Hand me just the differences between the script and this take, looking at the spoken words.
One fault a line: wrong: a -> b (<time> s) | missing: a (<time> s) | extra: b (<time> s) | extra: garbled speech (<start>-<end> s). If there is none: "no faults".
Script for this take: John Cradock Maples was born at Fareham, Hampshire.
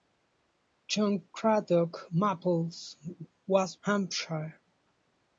missing: born at Fareham (3.8 s)